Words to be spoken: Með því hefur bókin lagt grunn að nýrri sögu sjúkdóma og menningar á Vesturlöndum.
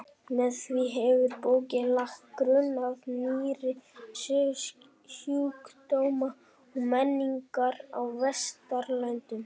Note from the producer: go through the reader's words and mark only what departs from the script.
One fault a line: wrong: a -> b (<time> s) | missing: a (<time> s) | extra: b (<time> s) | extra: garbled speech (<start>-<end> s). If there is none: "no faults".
no faults